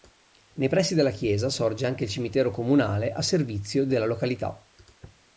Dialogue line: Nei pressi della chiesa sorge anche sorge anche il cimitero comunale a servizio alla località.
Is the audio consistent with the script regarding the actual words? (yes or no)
no